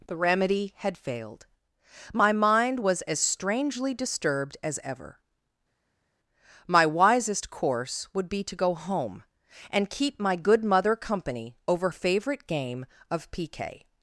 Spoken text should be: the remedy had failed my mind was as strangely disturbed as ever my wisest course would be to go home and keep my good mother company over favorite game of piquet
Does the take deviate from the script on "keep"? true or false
false